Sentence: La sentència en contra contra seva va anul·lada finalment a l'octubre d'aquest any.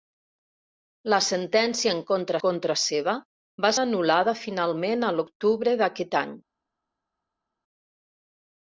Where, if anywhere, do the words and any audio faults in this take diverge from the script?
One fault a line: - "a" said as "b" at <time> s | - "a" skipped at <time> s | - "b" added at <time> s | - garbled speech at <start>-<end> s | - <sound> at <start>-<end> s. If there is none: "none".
none